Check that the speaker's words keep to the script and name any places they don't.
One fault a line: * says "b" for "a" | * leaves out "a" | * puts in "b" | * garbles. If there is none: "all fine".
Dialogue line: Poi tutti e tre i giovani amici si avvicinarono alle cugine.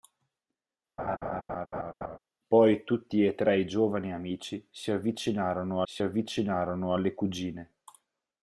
* puts in "si avvicinarono"